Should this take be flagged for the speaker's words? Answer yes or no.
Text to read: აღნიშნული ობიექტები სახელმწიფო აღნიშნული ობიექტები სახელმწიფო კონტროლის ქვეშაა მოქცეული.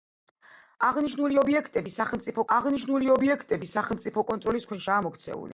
no